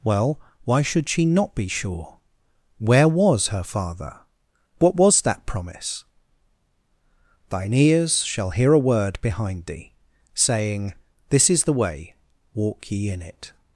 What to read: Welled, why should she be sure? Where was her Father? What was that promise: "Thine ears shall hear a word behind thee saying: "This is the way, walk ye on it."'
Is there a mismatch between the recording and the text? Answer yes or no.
yes